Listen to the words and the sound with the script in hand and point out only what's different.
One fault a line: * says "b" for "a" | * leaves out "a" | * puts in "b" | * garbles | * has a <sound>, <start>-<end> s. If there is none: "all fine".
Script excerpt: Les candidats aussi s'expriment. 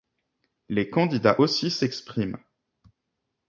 all fine